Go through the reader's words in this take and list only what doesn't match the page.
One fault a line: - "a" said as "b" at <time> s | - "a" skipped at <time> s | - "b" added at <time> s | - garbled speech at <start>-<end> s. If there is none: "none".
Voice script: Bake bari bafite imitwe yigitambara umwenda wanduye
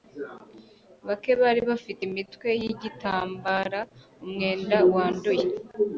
none